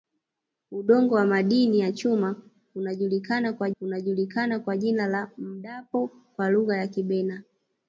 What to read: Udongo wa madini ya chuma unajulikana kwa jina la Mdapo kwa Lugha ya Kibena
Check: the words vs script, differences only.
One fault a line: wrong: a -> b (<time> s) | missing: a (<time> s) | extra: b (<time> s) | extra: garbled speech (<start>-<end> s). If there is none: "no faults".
extra: unajulikana kwa (3.8 s)